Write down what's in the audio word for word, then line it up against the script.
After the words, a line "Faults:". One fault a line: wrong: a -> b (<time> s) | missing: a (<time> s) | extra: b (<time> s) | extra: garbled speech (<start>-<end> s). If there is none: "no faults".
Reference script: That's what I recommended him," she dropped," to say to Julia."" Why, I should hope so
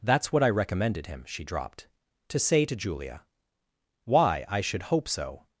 That's what I recommended him," she dropped," to say to Julia."" Why, I should hope so
Faults:
no faults